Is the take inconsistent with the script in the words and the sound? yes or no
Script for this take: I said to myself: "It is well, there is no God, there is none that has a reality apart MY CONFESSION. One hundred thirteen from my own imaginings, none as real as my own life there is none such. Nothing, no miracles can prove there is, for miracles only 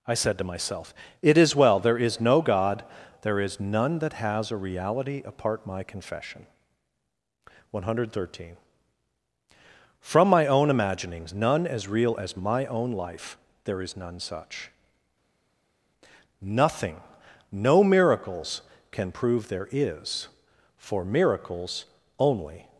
no